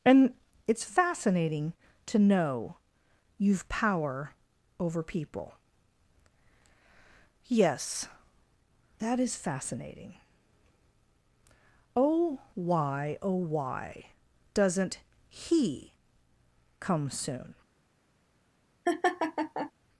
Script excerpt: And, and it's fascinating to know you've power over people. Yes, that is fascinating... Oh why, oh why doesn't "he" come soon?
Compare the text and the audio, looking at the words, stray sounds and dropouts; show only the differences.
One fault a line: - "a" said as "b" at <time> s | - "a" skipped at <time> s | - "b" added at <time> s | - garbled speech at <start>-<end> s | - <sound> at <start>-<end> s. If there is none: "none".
- "and" skipped at 0.3 s
- laugh at 18.9-19.7 s